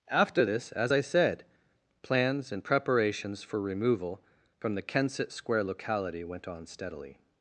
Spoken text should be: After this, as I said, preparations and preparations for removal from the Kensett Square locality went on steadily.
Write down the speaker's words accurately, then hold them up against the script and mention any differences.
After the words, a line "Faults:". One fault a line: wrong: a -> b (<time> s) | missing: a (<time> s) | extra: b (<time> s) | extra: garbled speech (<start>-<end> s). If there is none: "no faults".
After this, as I said, plans and preparations for removal from the Kensett Square locality went on steadily.
Faults:
wrong: preparations -> plans (2.0 s)